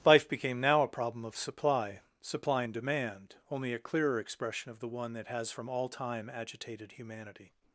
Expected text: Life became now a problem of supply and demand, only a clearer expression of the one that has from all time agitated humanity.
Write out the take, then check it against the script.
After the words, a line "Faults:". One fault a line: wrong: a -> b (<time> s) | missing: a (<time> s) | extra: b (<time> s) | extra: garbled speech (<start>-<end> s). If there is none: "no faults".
Life became now a problem of supply supply and demand, only a clearer expression of the one that has from all time agitated humanity.
Faults:
extra: supply (2.2 s)